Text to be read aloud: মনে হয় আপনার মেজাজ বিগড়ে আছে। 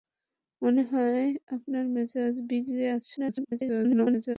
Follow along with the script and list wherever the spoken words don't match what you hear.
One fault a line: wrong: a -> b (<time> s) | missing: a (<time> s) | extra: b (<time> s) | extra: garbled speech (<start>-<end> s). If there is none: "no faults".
extra: garbled speech (3.2-4.4 s)